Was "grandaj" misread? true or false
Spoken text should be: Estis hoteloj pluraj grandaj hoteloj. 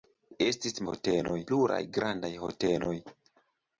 false